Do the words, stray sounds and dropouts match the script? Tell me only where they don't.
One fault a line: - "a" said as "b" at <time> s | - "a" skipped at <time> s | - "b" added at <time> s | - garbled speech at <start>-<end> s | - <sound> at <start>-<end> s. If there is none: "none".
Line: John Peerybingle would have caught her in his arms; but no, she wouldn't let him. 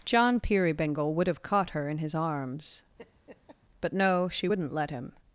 - laugh at 3.0-3.6 s